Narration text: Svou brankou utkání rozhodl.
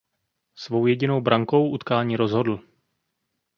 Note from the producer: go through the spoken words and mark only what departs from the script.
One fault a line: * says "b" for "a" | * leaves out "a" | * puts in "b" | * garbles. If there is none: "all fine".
* puts in "jedinou"